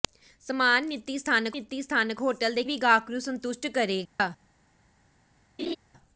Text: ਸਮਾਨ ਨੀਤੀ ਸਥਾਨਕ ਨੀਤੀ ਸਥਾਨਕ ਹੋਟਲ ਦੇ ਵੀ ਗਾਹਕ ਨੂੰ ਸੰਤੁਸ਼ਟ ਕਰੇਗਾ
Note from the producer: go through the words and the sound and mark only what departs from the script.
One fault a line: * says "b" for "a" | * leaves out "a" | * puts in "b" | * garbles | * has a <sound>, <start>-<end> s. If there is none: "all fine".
* has a dropout, 4.1-4.2 s
* has a laugh, 5.6-5.8 s